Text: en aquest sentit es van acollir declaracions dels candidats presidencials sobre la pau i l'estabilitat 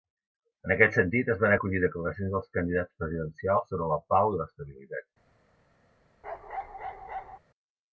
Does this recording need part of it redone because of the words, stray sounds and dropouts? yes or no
yes